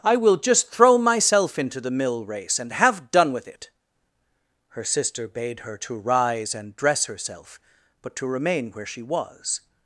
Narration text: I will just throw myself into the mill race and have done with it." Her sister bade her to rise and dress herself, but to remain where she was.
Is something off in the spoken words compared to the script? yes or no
no